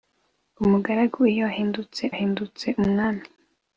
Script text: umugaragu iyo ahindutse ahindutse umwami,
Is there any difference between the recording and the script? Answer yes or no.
no